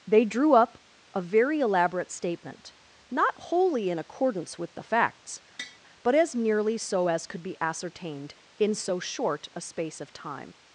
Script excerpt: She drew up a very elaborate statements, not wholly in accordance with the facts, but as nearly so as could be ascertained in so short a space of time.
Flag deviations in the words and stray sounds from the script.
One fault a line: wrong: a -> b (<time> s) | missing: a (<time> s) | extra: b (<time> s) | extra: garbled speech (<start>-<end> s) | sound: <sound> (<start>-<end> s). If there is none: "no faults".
wrong: She -> They (0.1 s)
wrong: statements -> statement (2.1 s)
sound: tap (5.6-5.8 s)